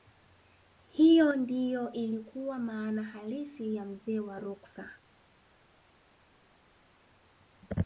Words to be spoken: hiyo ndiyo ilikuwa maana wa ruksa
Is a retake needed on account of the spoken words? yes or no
yes